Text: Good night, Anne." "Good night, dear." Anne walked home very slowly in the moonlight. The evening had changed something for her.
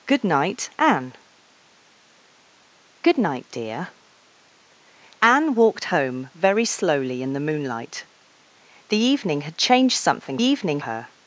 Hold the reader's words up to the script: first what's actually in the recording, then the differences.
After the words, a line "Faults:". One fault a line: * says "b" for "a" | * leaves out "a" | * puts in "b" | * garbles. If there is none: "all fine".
Good night, Anne." "Good night, dear." Anne walked home very slowly in the moonlight. The evening had changed something evening her.
Faults:
* says "evening" for "for"